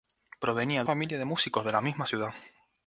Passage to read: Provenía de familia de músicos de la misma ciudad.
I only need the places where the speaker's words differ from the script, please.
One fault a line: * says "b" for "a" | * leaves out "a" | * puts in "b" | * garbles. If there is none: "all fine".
all fine